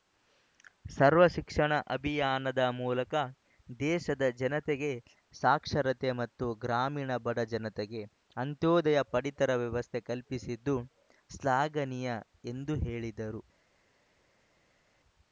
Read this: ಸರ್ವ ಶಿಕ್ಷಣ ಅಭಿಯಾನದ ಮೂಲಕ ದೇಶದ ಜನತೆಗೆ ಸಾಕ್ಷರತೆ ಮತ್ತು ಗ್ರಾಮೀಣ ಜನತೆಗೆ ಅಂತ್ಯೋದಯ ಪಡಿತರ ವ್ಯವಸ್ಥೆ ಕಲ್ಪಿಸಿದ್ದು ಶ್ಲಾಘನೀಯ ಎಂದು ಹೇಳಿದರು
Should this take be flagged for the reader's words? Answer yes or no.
yes